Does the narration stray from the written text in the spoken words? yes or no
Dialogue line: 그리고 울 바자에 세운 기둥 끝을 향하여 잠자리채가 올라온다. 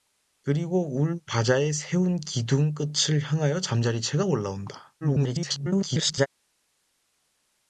yes